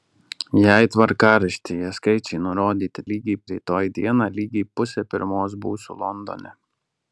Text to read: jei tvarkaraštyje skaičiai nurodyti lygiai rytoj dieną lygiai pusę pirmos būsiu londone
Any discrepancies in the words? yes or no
no